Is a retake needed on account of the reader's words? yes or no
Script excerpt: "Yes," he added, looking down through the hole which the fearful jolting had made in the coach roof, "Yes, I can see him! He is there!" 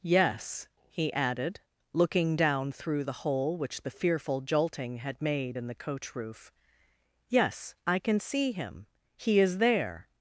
no